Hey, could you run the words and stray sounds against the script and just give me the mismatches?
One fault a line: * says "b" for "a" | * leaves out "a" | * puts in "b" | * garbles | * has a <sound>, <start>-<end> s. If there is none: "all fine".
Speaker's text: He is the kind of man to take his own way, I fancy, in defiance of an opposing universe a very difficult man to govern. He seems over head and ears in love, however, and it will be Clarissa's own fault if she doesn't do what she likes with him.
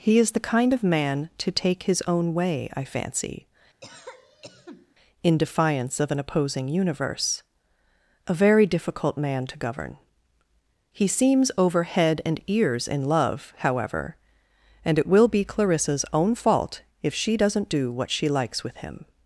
* has a cough, 3.8-5.0 s